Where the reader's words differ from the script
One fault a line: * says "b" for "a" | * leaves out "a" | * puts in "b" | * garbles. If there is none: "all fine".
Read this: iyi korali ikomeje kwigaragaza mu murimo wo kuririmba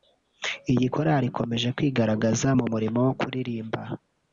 all fine